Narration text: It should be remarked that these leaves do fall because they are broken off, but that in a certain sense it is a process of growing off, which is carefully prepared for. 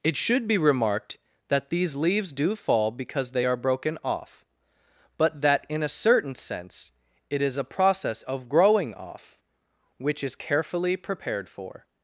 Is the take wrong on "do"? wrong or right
right